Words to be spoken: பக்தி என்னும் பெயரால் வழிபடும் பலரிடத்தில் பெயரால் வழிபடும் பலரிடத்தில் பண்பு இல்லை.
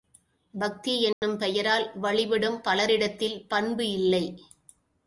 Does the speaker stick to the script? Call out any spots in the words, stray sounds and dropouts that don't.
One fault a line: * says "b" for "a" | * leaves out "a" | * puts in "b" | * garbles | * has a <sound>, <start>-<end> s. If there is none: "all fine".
* has a dropout, 1.1-1.2 s
* leaves out "பெயரால் வழிபடும் பலரிடத்தில்"